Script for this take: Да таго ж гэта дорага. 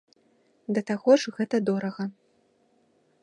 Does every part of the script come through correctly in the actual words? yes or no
yes